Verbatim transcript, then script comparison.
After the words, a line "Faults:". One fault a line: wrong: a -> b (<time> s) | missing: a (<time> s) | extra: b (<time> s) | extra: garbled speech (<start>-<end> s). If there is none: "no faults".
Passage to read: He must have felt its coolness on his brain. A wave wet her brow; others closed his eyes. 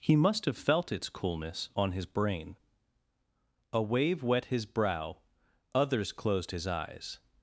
He must have felt its coolness on his brain. A wave wet his brow; others closed his eyes.
Faults:
wrong: her -> his (4.4 s)